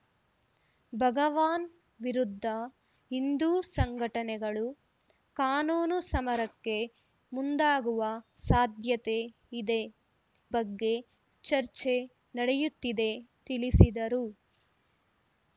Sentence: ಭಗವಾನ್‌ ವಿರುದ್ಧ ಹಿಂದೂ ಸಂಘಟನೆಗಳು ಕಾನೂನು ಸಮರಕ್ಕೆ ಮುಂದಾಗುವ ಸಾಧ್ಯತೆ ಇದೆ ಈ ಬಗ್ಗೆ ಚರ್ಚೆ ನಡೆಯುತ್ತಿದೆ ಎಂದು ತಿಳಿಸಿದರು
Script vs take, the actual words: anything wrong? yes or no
yes